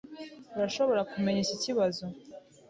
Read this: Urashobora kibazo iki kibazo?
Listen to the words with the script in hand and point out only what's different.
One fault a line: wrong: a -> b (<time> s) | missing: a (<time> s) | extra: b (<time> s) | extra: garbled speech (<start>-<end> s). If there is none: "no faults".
wrong: kibazo -> kumenya (1.1 s)